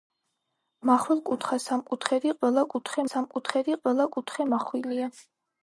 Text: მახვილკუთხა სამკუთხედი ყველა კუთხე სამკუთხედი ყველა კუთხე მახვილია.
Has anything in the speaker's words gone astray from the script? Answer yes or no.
no